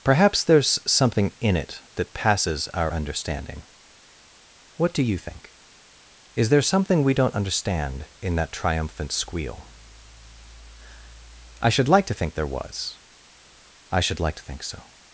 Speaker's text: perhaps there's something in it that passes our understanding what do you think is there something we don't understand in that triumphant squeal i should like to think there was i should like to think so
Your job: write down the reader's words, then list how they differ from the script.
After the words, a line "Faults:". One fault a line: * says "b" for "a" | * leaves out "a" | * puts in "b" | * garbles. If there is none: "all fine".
perhaps there's something in it that passes our understanding what do you think is there something we don't understand in that triumphant squeal i should like to think there was i should like to think so
Faults:
all fine